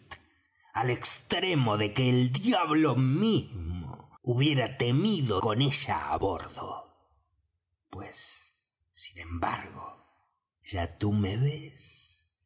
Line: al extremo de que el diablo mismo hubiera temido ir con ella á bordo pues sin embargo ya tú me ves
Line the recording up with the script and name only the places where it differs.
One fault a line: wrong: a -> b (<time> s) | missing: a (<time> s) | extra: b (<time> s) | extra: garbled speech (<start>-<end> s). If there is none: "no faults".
missing: ir (5.4 s)